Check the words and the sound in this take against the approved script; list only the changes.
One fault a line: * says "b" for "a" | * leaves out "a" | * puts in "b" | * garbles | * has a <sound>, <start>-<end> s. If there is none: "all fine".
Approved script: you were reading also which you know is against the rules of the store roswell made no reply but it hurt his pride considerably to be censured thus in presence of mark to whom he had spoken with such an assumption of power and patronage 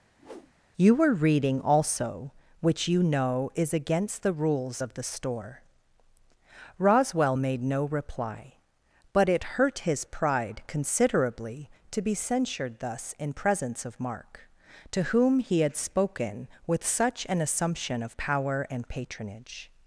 * has a whoosh, 0.2-0.5 s